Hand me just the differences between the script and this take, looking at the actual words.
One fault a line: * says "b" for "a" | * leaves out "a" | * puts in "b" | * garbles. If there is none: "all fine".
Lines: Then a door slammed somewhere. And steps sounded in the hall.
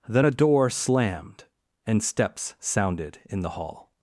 * leaves out "somewhere"